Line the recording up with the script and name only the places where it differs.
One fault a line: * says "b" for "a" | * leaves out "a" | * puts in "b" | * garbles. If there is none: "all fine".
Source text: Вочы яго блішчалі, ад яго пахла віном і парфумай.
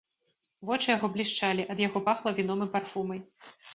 all fine